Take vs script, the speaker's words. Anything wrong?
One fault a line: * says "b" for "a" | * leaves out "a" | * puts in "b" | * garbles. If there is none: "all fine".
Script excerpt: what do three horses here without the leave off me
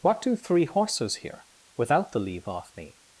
all fine